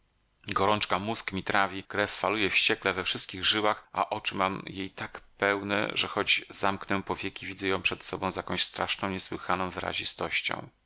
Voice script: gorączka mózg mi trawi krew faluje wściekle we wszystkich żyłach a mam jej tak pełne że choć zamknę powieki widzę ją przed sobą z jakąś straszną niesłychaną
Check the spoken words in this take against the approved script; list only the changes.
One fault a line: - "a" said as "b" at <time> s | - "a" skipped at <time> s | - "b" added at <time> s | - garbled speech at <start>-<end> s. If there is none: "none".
- "oczy" added at 4.1 s